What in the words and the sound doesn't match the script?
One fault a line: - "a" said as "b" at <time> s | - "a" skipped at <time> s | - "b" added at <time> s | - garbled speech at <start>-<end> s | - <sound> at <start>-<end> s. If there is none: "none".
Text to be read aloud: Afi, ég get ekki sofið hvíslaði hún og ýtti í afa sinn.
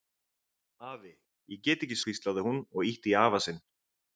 - "sofið" skipped at 2.0 s